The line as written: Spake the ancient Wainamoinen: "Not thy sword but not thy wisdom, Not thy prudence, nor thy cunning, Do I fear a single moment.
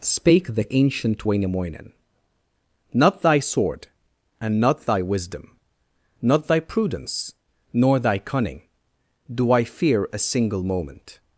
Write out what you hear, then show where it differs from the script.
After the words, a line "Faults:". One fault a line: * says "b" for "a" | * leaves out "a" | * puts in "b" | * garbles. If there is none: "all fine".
Spake the ancient Wainamoinen: "Not thy sword and not thy wisdom, Not thy prudence, nor thy cunning, Do I fear a single moment.
Faults:
* says "and" for "but"